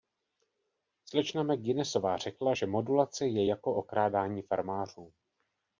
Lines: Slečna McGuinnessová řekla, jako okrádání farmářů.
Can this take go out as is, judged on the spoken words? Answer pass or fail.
fail